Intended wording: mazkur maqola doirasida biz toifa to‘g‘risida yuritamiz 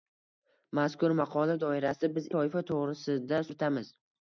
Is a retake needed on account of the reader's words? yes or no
no